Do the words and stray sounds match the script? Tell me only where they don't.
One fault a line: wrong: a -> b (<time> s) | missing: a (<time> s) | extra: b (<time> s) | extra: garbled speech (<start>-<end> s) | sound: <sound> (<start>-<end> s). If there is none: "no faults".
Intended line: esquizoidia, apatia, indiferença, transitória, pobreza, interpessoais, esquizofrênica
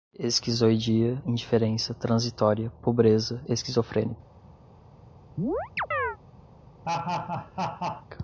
missing: apatia (1.2 s)
missing: interpessoais (3.4 s)
sound: chirp (5.4-6.2 s)
sound: laugh (6.8-8.1 s)